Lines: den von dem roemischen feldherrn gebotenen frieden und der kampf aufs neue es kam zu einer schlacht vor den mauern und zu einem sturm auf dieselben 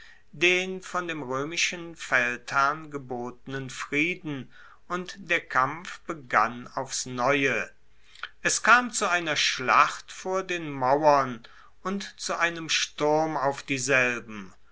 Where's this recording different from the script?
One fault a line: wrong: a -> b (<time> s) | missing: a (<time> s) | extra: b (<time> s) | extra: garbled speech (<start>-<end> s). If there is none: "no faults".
extra: begann (6.1 s)